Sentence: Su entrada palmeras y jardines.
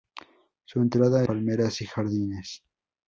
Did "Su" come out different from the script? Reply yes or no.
no